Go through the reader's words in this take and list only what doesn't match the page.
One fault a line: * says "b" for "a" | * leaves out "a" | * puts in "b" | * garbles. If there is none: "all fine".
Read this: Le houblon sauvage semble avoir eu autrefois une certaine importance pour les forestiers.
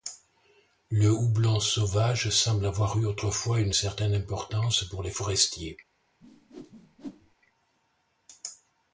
all fine